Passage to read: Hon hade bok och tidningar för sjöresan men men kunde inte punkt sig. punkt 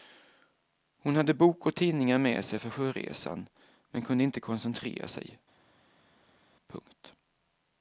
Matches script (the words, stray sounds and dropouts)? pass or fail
fail